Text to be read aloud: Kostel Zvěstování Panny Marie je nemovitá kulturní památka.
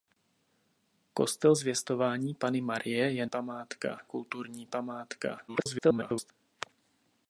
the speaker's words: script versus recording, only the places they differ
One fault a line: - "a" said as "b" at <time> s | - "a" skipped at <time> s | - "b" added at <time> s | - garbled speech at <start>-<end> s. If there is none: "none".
- "nemovitá" said as "památka" at 3.3 s
- garbled speech at 5.5-6.3 s